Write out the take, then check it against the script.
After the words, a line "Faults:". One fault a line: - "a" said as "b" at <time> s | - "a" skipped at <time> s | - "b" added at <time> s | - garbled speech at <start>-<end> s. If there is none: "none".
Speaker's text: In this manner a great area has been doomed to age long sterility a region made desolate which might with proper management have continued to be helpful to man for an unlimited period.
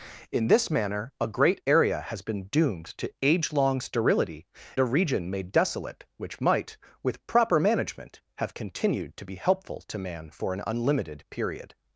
In this manner a great area has been doomed to age long sterility a region made desolate which might with proper management have continued to be helpful to man for an unlimited period.
Faults:
none